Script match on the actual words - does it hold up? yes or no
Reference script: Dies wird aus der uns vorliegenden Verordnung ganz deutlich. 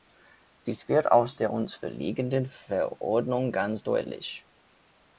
yes